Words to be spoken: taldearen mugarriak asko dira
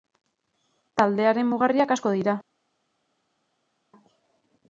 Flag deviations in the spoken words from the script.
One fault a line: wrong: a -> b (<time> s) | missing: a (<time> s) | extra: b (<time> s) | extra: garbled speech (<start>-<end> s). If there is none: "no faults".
no faults